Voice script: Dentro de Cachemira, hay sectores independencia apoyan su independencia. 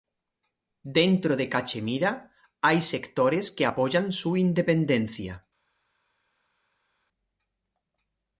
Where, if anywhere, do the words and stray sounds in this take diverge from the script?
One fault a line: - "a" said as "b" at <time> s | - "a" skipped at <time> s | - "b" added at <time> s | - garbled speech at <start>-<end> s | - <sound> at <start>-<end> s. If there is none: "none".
- "independencia" said as "que" at 3.5 s